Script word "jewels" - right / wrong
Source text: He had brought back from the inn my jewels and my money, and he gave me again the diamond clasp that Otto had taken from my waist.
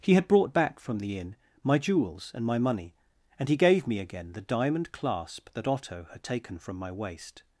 right